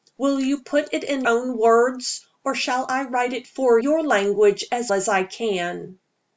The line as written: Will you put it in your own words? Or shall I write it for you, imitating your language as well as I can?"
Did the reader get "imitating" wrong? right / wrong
wrong